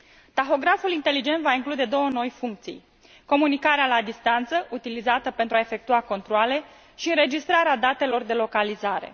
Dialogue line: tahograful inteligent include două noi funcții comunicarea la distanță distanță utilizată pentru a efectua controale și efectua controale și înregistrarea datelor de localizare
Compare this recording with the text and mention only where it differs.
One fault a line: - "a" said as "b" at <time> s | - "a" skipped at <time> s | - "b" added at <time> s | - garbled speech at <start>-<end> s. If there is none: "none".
- "va" added at 1.4 s
- "distanță" skipped at 4.7 s
- "efectua controale și" skipped at 7.1 s